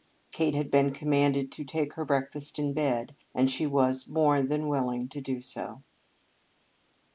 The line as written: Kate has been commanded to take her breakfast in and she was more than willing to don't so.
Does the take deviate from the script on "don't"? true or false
true